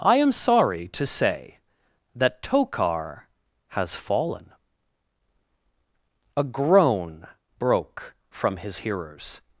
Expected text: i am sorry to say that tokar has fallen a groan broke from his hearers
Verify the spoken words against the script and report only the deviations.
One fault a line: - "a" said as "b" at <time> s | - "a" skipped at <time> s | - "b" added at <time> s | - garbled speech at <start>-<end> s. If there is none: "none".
none